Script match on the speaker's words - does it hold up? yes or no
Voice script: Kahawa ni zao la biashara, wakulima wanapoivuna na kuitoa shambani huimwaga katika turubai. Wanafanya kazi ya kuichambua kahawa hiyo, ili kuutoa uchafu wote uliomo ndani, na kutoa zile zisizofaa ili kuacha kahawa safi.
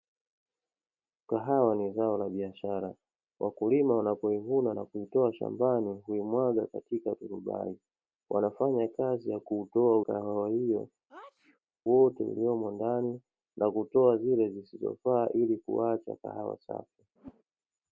no